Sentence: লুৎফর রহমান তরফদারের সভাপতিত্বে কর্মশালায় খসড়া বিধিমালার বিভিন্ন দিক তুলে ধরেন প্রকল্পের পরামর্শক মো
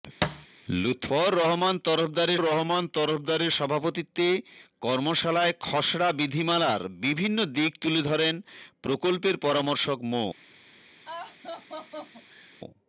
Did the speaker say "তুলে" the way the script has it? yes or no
yes